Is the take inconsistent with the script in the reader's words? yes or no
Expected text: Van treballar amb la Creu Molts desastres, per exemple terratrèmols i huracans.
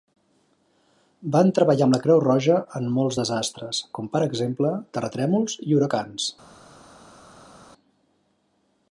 yes